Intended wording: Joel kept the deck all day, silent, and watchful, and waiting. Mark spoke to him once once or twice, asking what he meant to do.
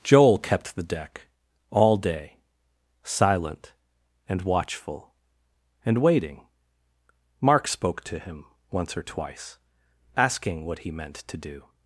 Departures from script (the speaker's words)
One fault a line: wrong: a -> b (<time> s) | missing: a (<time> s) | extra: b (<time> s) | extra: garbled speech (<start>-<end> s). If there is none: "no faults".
missing: once (9.0 s)